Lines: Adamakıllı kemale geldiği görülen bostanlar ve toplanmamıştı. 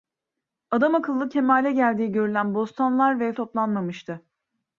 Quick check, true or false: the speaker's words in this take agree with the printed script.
true